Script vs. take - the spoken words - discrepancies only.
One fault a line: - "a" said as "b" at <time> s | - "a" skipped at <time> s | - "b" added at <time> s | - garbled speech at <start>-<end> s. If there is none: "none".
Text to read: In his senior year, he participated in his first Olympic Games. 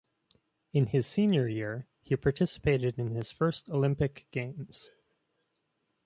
none